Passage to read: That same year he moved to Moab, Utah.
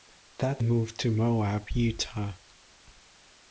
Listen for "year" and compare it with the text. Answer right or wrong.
wrong